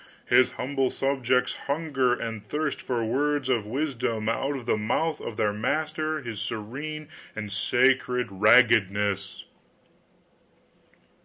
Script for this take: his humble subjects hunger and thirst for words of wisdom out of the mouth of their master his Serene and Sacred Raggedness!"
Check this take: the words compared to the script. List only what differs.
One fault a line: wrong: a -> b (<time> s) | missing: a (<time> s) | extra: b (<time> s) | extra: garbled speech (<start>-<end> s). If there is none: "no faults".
no faults